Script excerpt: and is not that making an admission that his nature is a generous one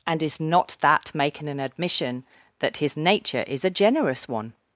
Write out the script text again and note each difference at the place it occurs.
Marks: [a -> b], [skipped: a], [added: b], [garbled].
and is not that making an admission that his nature is a generous one